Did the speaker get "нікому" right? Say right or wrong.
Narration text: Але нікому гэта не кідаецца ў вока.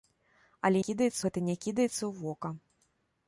wrong